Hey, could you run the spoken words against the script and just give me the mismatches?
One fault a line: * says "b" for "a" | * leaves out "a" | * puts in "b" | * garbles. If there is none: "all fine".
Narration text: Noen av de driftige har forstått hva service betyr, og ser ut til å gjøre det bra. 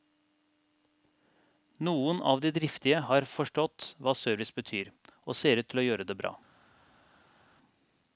all fine